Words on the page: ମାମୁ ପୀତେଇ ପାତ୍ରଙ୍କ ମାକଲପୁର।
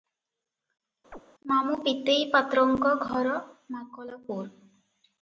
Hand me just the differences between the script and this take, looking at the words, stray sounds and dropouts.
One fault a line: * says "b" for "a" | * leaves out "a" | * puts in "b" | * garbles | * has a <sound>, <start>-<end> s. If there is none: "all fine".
* has a chirp, 1.1-1.2 s
* puts in "ଘର"